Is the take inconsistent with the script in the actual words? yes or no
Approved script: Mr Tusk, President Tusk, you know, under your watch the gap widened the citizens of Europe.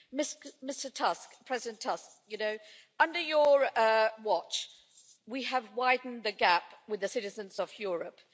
yes